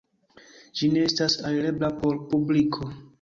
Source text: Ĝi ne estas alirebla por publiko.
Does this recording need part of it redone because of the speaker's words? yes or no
no